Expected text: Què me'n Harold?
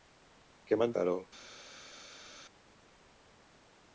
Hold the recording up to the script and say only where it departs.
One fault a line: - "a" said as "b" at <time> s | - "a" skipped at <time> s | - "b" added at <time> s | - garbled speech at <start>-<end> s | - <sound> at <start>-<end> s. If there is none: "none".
none